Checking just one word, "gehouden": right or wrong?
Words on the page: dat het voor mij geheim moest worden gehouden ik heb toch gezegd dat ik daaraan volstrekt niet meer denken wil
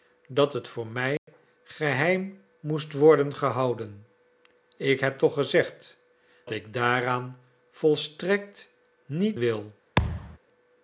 right